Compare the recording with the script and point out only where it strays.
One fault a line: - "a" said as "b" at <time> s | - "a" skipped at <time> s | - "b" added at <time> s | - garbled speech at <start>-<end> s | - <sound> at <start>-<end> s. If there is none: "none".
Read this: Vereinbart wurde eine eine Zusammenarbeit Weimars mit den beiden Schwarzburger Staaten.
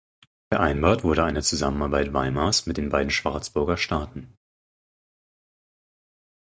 - "eine" skipped at 1.4 s